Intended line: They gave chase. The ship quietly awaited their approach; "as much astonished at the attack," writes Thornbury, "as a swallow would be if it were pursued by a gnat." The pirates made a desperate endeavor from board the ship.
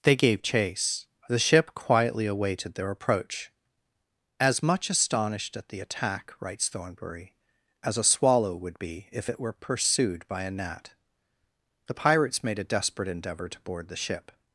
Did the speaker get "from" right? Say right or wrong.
wrong